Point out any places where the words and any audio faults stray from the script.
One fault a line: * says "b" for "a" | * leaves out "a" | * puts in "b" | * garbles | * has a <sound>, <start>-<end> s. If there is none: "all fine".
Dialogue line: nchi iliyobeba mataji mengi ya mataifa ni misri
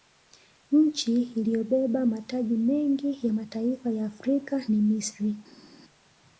* puts in "ya afrika"